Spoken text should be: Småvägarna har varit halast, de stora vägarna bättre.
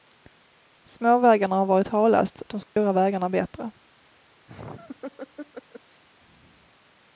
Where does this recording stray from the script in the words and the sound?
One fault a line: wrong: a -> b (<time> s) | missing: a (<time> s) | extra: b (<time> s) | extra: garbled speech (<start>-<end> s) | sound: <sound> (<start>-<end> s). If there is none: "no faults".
sound: dropout (2.6-2.8 s)
sound: laugh (4.5-6.0 s)